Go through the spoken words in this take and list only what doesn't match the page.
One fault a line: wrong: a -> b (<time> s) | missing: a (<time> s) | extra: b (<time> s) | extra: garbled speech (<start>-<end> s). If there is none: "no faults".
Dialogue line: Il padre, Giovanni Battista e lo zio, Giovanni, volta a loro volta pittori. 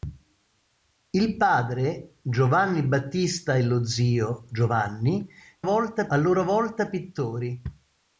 no faults